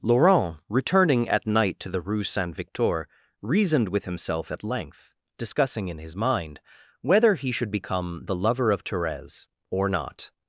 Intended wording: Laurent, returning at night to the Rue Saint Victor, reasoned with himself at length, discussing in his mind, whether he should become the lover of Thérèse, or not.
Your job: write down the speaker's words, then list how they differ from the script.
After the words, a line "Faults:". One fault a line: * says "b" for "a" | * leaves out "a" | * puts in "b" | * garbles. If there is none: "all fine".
Laurent, returning at night to the Rue Saint Victor, reasoned with himself at length, discussing in his mind, whether he should become the lover of Thérèse, or not.
Faults:
all fine